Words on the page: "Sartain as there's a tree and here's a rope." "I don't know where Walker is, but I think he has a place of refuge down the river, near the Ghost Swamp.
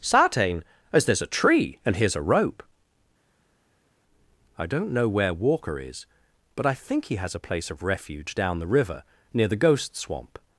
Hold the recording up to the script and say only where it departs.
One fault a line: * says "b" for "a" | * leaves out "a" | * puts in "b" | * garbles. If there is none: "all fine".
all fine